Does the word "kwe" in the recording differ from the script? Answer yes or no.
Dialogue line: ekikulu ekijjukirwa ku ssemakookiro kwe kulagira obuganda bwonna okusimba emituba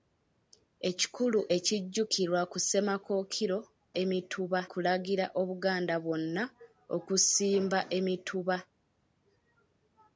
yes